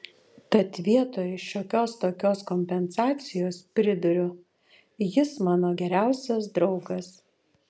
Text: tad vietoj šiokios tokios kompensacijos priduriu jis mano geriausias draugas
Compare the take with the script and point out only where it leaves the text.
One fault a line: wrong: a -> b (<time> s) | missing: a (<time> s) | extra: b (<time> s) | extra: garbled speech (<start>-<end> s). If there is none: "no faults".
no faults